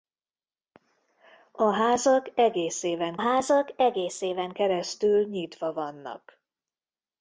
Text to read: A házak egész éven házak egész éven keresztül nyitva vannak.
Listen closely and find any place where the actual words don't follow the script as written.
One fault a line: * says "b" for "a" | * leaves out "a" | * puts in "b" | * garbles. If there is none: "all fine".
all fine